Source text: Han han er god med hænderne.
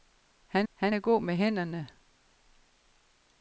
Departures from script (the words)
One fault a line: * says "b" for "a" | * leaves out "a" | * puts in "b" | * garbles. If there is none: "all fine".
all fine